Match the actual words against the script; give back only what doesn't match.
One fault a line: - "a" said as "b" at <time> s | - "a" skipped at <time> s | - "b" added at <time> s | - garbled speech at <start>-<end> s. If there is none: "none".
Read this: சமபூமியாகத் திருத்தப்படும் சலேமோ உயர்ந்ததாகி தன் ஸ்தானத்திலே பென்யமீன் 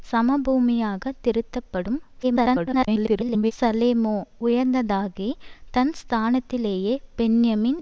- garbled speech at 2.2-3.5 s